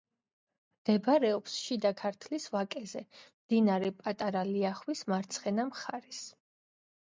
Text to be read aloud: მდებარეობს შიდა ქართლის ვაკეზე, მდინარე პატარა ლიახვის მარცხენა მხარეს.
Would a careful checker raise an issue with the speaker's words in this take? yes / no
no